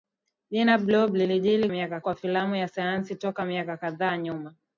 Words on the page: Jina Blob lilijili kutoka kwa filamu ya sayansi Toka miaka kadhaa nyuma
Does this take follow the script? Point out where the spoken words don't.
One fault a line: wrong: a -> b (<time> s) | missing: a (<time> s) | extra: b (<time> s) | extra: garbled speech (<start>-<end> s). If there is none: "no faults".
wrong: kutoka -> miaka (1.7 s)